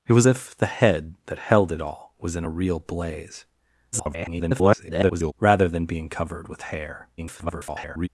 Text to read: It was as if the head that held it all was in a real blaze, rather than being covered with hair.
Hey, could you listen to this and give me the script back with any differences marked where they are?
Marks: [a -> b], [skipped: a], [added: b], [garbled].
It was [skipped: as] if the head that held it all was in a real blaze, [garbled] rather than being covered with hair. [garbled]